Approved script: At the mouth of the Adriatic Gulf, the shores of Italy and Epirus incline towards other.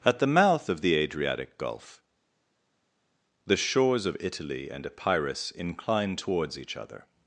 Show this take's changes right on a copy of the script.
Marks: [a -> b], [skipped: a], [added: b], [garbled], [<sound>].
At the mouth of the Adriatic Gulf, the shores of Italy and Epirus incline towards [added: each] other.